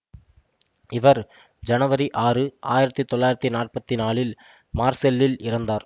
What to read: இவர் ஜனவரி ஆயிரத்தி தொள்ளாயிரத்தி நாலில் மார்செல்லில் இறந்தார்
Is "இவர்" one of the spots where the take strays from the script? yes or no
no